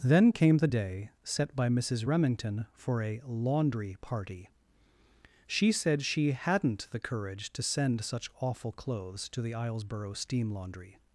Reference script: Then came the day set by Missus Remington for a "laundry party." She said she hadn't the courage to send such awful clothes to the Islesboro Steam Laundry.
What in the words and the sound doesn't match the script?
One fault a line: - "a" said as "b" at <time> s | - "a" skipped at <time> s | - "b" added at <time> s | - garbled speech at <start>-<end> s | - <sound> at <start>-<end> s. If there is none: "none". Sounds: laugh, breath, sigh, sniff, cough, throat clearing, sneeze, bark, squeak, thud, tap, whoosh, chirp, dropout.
none